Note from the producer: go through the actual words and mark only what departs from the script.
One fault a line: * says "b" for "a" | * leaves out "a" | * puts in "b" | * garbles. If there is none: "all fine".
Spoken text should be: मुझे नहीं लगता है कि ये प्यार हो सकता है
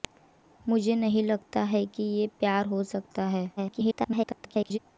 * garbles